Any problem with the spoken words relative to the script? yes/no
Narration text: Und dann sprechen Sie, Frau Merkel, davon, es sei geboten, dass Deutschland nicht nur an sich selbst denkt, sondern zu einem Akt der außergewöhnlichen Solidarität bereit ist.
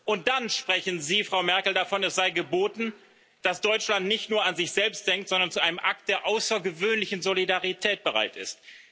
no